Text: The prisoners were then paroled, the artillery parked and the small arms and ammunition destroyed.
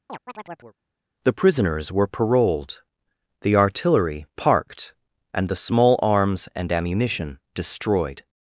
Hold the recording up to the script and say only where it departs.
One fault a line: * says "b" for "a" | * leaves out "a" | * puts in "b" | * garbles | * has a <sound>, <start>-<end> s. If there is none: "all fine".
* has a chirp, 0.1-0.8 s
* leaves out "then"